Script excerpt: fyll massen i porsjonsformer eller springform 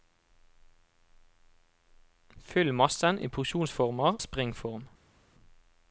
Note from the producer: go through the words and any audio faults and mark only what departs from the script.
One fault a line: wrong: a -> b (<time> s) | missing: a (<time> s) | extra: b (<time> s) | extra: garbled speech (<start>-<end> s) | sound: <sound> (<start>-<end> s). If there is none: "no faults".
missing: eller (4.2 s)